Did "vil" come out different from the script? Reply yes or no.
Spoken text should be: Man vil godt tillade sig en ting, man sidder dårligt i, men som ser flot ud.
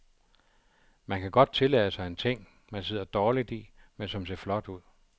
yes